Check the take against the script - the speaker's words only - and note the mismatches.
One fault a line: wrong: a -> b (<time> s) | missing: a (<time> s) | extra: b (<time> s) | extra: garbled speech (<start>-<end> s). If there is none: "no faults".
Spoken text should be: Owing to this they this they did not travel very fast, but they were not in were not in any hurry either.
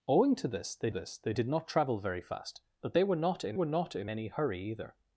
no faults